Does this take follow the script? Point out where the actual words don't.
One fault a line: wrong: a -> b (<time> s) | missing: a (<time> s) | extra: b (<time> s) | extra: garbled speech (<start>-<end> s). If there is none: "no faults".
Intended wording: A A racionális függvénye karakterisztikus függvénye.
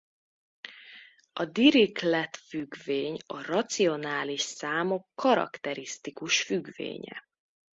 extra: Dirichlet függvény (1.4 s)
wrong: függvénye -> számok (4.4 s)